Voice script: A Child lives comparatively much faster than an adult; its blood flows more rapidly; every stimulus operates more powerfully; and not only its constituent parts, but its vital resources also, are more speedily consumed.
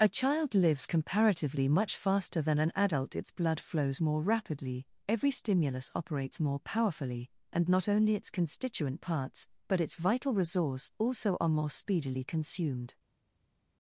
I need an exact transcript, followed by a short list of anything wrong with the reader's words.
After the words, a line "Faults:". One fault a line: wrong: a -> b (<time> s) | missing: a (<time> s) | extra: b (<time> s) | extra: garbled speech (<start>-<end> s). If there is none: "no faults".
A Child lives comparatively much faster than an adult; its blood flows more rapidly; every stimulus operates more powerfully; and not only its constituent parts, but its vital resource also, are more speedily consumed.
Faults:
wrong: resources -> resource (10.3 s)